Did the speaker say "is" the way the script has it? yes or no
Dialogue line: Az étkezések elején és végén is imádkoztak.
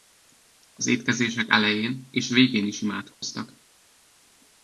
yes